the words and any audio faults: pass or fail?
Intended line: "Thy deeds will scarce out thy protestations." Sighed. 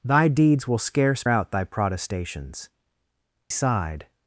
pass